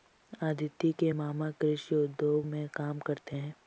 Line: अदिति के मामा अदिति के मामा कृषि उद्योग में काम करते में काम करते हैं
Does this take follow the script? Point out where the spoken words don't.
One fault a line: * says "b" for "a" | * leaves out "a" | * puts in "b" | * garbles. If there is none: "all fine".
* leaves out "अदिति के मामा"
* leaves out "में काम करते"